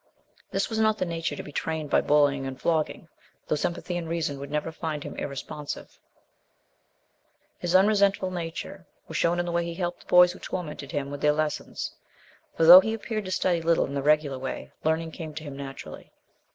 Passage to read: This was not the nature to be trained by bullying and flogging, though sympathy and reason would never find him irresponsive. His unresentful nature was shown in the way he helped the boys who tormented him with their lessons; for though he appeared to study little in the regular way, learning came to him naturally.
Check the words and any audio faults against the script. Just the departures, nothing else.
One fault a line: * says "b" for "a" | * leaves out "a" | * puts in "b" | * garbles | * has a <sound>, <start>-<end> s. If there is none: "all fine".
all fine